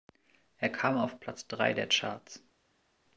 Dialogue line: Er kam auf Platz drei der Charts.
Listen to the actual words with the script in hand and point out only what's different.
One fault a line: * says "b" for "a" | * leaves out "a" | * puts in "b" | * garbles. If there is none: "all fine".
all fine